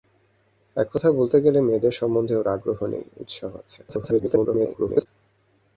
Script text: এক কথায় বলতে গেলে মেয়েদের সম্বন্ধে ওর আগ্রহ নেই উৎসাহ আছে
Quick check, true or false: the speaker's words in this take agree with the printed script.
false